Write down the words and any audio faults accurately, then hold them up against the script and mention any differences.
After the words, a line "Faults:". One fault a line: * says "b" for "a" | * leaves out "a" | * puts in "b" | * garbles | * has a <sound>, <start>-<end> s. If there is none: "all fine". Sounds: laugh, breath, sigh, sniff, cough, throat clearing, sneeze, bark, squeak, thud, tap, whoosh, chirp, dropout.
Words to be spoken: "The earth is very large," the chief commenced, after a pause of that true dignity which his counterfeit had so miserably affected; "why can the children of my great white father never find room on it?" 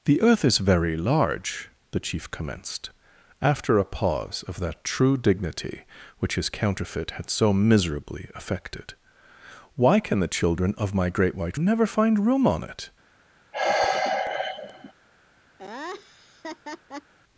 "The earth is very large," the chief commenced, after a pause of that true dignity which his counterfeit had so miserably affected; "why can the children of my great white never find room on it?"
Faults:
* leaves out "father"
* has a sigh, 13.5-14.9 s
* has a laugh, 15.6-17.1 s